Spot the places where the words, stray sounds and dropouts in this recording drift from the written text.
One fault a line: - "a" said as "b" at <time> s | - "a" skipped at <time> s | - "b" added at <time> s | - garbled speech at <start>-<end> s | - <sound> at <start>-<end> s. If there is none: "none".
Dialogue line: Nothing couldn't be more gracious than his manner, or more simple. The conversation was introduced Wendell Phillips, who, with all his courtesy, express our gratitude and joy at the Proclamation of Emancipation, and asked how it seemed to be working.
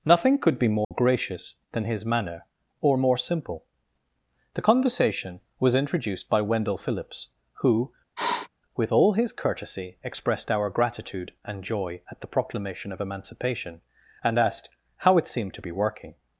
- "couldn't" said as "could" at 0.4 s
- dropout at 0.8-0.9 s
- "by" added at 6.3 s
- sniff at 8.2-8.5 s
- "express" said as "expressed" at 10.0 s